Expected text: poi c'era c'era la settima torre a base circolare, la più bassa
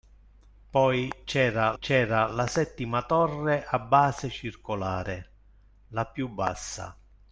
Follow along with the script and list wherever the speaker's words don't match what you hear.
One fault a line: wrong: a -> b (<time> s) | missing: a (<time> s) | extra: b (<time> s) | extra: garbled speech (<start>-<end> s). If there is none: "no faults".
no faults